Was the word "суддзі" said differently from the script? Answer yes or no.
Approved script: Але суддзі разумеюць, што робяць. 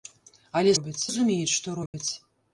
yes